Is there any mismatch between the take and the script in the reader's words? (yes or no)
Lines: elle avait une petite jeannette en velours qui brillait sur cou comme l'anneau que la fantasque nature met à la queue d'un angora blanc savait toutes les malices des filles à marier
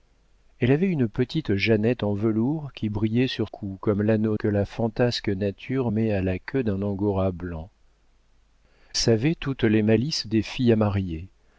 no